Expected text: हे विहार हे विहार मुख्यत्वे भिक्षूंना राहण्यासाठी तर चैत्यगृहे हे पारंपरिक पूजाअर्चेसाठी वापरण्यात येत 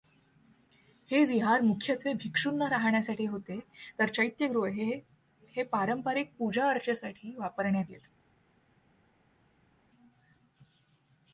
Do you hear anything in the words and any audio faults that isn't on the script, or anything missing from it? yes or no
yes